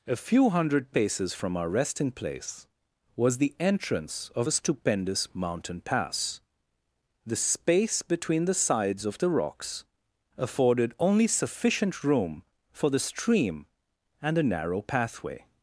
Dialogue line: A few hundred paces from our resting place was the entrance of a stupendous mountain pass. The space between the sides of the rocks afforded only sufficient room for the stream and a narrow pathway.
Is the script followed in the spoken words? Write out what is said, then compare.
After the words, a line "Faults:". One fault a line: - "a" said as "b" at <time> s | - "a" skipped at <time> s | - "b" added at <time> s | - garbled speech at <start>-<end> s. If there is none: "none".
A few hundred paces from our resting place was the entrance of a stupendous mountain pass. The space between the sides of the rocks afforded only sufficient room for the stream and a narrow pathway.
Faults:
none